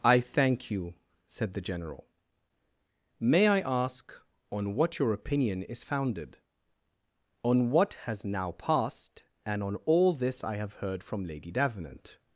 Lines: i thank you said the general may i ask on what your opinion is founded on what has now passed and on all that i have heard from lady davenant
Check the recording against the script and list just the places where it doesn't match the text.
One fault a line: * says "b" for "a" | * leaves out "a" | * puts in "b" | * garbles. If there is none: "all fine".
* says "this" for "that"